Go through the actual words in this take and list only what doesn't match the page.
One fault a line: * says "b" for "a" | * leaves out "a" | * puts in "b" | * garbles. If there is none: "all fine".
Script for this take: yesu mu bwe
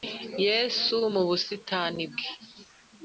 * puts in "busitani"